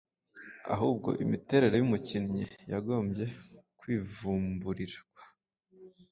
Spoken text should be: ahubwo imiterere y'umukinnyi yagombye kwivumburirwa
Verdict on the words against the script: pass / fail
pass